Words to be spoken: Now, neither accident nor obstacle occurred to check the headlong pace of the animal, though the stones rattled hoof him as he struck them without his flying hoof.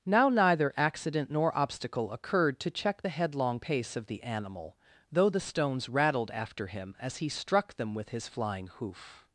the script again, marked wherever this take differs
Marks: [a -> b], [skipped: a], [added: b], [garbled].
Now, neither accident nor obstacle occurred to check the headlong pace of the animal, though the stones rattled [hoof -> after] him as he struck them [without -> with] his flying hoof.